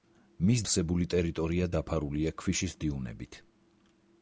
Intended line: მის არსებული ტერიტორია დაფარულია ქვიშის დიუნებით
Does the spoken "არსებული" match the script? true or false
true